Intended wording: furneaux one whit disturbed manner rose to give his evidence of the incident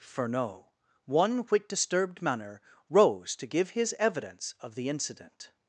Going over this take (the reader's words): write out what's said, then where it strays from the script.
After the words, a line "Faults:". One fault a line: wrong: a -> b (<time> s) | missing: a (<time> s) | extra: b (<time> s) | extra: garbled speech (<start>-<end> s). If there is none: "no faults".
furneaux one whit disturbed manner rose to give his evidence of the incident
Faults:
no faults